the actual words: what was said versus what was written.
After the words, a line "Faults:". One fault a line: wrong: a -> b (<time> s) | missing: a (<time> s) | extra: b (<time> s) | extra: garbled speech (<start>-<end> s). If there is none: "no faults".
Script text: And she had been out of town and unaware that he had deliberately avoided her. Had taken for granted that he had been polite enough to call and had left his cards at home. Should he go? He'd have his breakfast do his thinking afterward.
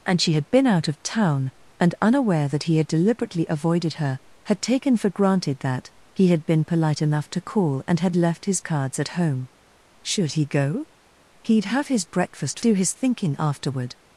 And she had been out of town and unaware that he had deliberately avoided her. Had taken for granted that he had been polite enough to call and had left his cards at home. Should he go? He'd have his breakfast do his thinking afterward.
Faults:
no faults